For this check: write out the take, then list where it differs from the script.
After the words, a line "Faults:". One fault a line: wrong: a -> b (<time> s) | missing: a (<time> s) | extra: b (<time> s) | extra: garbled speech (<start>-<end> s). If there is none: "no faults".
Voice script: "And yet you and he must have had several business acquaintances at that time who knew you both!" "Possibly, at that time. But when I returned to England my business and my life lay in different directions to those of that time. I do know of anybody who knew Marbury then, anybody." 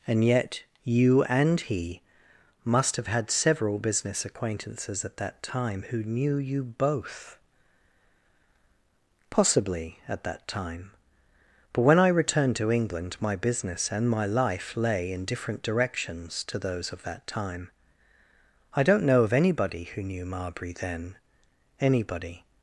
"And yet you and he must have had several business acquaintances at that time who knew you both!" "Possibly, at that time. But when I returned to England my business and my life lay in different directions to those of that time. I don't know of anybody who knew Marbury then, anybody."
Faults:
wrong: do -> don't (18.8 s)